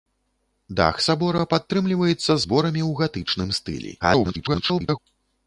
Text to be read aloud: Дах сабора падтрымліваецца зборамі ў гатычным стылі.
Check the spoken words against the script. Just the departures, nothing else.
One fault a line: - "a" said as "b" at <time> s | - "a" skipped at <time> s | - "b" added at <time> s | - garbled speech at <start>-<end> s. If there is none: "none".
- garbled speech at 4.0-5.0 s